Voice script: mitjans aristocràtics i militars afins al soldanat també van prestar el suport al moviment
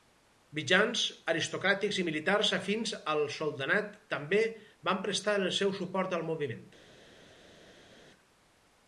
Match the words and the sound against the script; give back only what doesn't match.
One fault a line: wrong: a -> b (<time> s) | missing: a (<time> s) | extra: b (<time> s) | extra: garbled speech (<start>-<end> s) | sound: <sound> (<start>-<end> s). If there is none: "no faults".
extra: seu (5.6 s)